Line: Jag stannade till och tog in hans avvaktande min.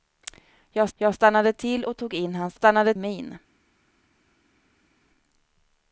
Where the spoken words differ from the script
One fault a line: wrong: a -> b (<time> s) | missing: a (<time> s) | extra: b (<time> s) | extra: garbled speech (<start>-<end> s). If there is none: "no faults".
extra: jag (0.9 s)
wrong: avvaktande -> stannade (2.5 s)